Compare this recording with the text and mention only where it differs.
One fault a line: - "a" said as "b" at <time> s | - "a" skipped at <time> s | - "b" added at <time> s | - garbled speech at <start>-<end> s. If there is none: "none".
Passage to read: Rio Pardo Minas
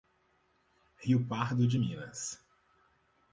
- "de" added at 1.7 s